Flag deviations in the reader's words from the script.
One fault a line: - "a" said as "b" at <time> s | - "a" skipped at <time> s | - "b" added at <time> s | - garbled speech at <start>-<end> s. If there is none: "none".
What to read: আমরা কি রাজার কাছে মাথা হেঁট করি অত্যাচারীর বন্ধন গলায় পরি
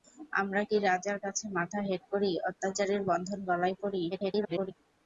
- garbled speech at 4.1-4.7 s